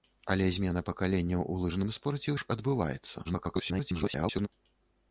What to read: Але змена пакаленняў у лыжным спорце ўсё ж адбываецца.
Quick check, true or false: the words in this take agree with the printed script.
false